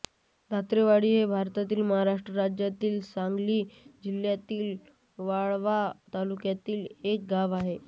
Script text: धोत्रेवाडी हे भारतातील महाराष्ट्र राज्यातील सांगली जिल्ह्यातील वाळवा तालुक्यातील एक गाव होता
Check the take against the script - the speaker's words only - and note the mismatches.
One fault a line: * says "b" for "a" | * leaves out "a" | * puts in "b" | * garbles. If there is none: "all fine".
* says "आहे" for "होता"